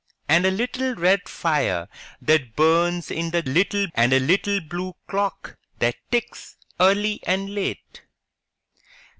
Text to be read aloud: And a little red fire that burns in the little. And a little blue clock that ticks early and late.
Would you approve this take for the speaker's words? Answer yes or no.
yes